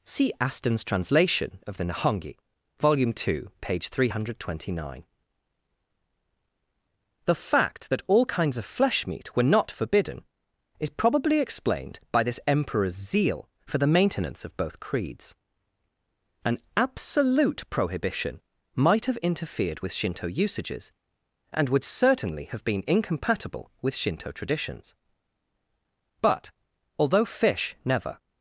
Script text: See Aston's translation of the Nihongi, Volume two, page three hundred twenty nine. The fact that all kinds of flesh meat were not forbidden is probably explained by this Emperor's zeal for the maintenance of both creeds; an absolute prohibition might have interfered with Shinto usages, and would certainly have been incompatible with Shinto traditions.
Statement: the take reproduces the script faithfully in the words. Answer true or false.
false